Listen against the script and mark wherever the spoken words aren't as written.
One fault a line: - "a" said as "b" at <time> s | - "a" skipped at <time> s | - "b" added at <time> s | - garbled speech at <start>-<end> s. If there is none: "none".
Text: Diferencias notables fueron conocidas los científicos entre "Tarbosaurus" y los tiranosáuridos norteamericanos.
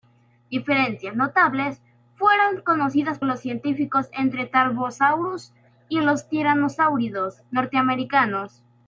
none